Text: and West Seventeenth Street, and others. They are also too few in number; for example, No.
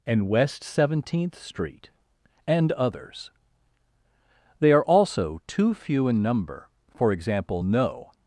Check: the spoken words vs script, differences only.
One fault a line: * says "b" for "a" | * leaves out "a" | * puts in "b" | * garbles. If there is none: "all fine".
all fine